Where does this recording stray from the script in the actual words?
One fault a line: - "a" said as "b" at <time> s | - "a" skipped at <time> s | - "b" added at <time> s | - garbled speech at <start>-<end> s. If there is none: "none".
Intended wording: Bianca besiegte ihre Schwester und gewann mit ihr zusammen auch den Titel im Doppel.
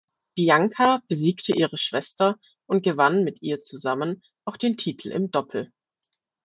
none